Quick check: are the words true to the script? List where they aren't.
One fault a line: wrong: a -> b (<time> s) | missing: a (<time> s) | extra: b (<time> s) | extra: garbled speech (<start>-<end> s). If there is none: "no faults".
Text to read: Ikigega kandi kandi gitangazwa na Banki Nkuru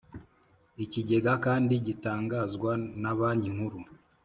missing: kandi (1.7 s)